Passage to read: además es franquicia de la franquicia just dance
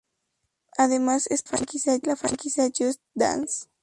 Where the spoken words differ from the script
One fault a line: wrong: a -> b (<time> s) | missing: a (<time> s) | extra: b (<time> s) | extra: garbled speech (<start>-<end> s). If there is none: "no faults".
no faults